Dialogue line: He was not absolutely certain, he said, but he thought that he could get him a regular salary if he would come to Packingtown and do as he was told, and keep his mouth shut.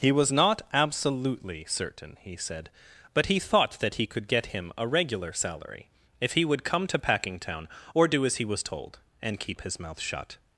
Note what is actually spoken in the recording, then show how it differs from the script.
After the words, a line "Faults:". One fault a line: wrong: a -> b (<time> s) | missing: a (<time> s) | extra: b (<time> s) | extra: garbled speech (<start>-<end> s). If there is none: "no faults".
He was not absolutely certain, he said, but he thought that he could get him a regular salary if he would come to Packingtown or do as he was told, and keep his mouth shut.
Faults:
wrong: and -> or (7.9 s)